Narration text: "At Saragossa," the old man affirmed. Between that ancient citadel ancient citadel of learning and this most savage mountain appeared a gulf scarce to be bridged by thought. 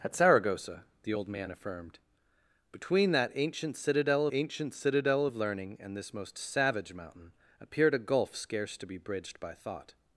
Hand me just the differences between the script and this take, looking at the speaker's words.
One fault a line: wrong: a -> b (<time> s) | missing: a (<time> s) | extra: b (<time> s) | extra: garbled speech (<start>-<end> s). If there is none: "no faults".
no faults